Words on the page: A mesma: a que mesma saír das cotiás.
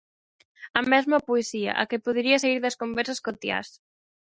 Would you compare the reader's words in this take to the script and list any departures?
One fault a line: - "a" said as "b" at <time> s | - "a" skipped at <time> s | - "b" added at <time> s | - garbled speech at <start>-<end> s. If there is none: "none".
- "poesía" added at 1.3 s
- "mesma" said as "podería" at 2.0 s
- "conversas" added at 2.8 s